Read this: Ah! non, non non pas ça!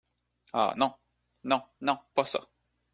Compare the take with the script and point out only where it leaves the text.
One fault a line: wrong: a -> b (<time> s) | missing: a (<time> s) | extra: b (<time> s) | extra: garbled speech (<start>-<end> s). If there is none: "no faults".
no faults